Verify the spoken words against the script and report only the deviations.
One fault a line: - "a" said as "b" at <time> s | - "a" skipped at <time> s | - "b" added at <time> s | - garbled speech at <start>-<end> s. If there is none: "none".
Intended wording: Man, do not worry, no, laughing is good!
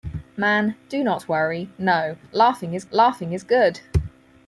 - "laughing is" added at 2.9 s